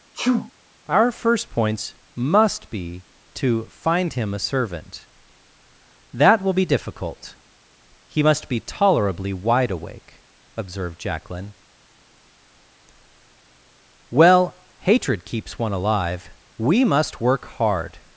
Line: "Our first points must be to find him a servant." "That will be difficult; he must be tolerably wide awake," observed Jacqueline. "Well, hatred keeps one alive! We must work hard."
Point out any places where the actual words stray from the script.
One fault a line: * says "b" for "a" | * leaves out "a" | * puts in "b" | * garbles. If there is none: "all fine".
all fine